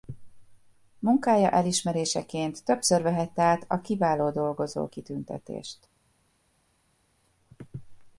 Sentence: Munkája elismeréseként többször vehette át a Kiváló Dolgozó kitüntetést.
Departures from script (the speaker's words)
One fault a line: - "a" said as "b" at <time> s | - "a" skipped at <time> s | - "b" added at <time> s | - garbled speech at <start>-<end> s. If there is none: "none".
none